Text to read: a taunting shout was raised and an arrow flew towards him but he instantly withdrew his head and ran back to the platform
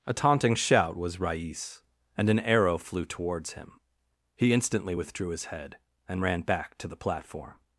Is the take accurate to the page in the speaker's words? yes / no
no